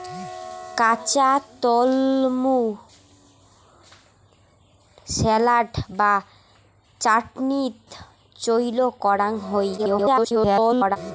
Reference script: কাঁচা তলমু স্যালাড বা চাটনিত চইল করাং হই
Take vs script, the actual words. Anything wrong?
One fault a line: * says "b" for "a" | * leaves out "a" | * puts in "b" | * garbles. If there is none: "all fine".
* garbles